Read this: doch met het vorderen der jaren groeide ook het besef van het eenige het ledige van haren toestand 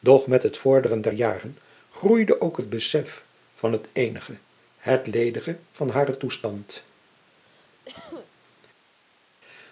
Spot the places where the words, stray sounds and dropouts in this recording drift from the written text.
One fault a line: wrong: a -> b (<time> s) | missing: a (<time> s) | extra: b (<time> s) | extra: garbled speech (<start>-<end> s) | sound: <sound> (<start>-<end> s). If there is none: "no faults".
sound: cough (7.4-8.3 s)